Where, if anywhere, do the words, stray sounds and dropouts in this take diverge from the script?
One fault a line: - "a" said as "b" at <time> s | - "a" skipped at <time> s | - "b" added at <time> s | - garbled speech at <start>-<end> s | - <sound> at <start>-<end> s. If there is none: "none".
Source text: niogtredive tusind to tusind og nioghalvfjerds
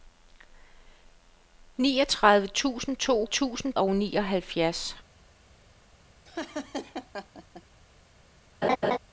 - laugh at 6.2-7.6 s
- laugh at 8.6-9.0 s